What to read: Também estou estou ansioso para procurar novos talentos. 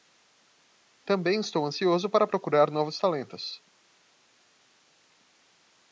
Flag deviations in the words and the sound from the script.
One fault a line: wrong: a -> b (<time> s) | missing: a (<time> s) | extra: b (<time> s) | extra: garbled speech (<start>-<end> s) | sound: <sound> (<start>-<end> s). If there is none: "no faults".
missing: estou (1.6 s)